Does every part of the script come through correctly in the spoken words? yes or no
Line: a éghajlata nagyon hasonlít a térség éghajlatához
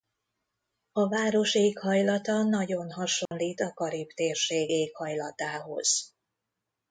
no